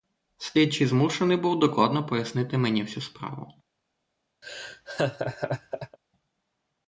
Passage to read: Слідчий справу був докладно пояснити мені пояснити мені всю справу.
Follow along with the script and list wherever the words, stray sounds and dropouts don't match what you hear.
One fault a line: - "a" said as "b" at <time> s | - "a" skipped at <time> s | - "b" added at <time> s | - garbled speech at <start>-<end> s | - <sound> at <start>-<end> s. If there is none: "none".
- "справу" said as "змушений" at 0.9 s
- "пояснити мені" skipped at 2.8 s
- laugh at 4.4-6.0 s